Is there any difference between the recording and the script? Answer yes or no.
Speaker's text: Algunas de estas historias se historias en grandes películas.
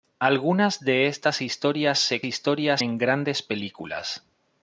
no